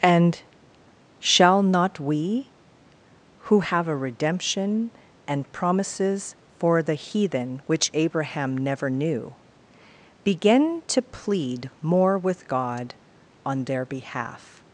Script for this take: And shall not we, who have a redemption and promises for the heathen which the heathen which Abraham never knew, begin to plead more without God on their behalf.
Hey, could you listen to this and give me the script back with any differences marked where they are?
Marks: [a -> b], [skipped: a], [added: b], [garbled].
And shall not we, who have a redemption and promises for the heathen which [skipped: the heathen which] Abraham never knew, begin to plead more [without -> with] God on their behalf.